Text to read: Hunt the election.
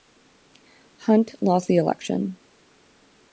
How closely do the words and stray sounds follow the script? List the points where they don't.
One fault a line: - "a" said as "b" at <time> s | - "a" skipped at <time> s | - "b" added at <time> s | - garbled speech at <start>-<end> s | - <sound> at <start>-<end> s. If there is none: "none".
- "lost" added at 1.4 s